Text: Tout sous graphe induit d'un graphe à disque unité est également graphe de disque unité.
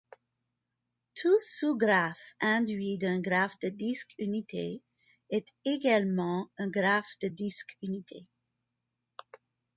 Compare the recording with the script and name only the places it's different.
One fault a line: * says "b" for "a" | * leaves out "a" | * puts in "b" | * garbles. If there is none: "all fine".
* says "de" for "à"
* puts in "un"